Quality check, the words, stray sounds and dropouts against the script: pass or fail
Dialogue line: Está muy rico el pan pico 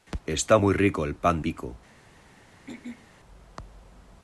fail